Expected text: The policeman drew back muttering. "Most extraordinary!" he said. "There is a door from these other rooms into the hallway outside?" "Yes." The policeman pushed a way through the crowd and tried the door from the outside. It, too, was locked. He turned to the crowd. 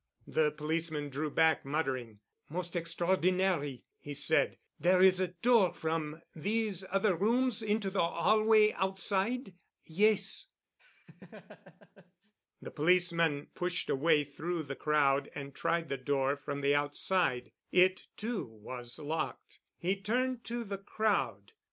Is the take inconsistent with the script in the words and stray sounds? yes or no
yes